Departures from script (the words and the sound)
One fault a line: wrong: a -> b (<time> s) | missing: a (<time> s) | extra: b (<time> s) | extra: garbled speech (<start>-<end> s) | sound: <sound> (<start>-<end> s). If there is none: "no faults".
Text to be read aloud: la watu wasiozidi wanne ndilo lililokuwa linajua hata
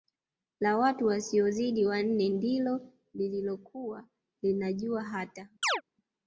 sound: chirp (5.6-5.8 s)